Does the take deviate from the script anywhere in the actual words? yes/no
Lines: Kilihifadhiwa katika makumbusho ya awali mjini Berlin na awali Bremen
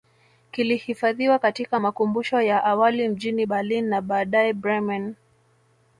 yes